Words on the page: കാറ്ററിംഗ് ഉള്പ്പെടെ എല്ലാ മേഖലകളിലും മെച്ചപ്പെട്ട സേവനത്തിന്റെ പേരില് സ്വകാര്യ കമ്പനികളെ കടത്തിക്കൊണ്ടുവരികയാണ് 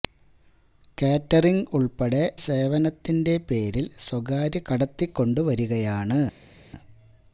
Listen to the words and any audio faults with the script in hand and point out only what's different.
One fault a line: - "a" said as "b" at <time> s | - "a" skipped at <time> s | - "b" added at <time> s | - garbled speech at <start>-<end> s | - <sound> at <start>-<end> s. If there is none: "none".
- "എല്ലാ മേഖലകളിലും മെച്ചപ്പെട്ട" skipped at 2.2 s
- "കമ്പനികളെ" skipped at 4.6 s